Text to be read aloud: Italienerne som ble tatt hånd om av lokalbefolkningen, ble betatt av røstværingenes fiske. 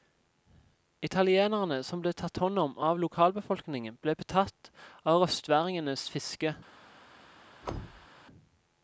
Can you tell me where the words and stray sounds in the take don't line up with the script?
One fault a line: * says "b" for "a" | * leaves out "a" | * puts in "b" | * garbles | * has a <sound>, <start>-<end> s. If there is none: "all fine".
* has a thud, 7.6-8.1 s